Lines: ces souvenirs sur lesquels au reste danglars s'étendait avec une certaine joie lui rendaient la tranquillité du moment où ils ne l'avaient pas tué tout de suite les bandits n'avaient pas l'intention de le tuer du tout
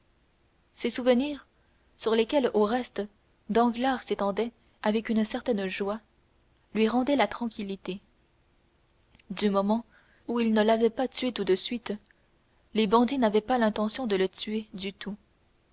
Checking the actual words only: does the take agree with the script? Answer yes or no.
yes